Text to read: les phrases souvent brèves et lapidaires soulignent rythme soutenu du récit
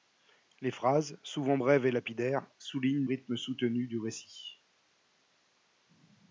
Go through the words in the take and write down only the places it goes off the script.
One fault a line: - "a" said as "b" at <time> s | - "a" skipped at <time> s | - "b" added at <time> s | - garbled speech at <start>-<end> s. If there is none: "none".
none